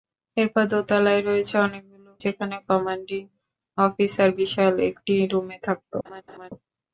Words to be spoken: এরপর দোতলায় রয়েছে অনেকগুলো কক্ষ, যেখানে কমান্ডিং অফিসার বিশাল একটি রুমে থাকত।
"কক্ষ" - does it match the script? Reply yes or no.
no